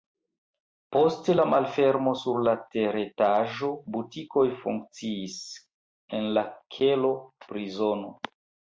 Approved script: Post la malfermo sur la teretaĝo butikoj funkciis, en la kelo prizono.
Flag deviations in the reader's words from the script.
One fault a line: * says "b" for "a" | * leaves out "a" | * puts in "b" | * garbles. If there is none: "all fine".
all fine